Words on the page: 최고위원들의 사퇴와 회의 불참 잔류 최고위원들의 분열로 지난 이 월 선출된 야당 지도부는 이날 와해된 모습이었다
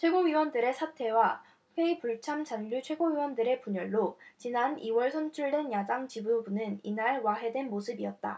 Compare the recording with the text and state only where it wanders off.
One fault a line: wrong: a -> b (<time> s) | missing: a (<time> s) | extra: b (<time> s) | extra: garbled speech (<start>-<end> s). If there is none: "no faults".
no faults